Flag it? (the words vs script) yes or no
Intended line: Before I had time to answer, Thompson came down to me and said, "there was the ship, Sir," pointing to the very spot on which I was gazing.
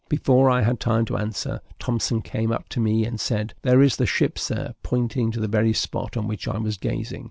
yes